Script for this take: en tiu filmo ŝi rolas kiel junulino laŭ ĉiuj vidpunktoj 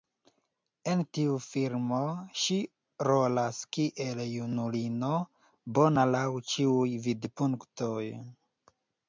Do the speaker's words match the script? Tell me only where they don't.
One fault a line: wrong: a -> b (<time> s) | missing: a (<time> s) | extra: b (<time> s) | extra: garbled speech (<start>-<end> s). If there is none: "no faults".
extra: bona (5.8 s)